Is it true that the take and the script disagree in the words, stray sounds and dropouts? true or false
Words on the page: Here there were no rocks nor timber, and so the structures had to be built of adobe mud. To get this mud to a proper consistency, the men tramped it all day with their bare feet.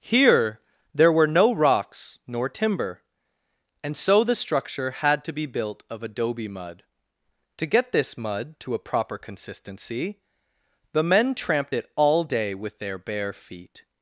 true